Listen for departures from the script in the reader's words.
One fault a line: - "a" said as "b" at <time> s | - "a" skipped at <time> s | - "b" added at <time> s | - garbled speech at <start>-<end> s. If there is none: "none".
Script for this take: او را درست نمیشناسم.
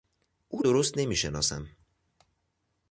- "را" skipped at 0.6 s